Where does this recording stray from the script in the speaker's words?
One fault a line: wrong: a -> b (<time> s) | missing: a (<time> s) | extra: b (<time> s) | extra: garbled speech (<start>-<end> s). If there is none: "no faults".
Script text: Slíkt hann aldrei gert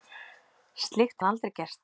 no faults